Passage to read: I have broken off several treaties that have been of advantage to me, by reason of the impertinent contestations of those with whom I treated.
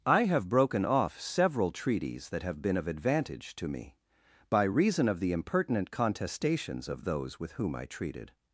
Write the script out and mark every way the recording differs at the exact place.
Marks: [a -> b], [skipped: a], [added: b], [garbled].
I have broken off several treaties that have been of advantage to me, by reason of the impertinent contestations of those with whom I treated.